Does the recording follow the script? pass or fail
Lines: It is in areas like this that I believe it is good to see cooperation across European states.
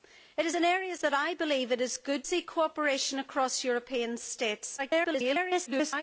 fail